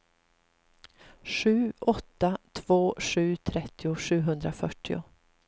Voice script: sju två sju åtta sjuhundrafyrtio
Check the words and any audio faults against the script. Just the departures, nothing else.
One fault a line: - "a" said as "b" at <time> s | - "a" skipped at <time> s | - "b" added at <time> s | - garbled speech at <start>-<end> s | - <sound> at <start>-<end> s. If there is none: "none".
- "åtta" added at 1.8 s
- "åtta" said as "trettio" at 3.4 s